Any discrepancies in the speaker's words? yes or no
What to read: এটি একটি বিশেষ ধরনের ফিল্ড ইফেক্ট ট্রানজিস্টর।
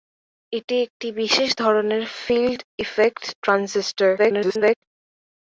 yes